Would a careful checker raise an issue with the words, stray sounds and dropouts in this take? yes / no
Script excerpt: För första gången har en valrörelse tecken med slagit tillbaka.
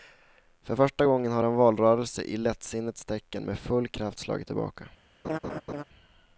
yes